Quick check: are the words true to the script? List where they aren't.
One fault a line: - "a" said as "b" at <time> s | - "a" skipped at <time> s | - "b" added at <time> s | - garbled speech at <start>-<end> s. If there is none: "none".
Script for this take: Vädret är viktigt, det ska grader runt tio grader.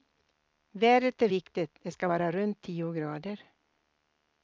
- "grader" said as "vara" at 2.1 s